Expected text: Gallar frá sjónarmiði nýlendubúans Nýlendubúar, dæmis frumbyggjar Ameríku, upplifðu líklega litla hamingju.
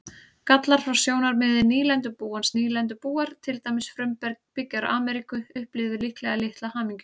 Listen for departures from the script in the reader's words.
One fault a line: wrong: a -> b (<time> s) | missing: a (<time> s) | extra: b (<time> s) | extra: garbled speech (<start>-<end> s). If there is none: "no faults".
extra: til (3.5 s)